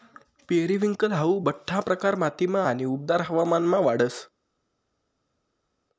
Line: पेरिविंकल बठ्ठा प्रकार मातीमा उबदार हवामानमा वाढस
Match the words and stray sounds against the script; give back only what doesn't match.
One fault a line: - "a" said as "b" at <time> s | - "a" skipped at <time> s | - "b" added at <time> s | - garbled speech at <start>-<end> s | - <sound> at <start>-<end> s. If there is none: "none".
- "हाऊ" added at 1.1 s
- "आणि" added at 2.6 s